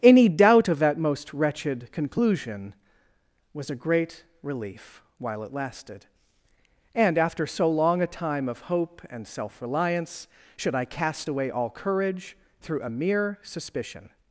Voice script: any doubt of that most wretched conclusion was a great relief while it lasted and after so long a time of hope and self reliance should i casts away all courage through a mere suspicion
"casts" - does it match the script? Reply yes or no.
no